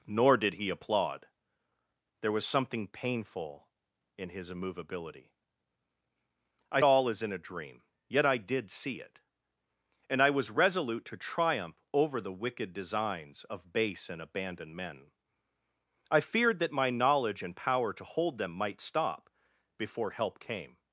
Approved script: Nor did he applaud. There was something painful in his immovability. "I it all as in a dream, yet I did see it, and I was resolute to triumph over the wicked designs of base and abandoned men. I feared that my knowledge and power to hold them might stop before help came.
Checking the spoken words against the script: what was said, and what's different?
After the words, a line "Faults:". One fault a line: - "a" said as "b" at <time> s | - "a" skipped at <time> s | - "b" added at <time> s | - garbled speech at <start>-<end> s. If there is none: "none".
Nor did he applaud. There was something painful in his immovability. "I it all as in a dream, yet I did see it, and I was resolute to triumph over the wicked designs of base and abandoned men. I feared that my knowledge and power to hold them might stop before help came.
Faults:
none